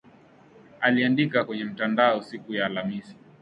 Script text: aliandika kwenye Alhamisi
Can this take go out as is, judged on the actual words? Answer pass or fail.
fail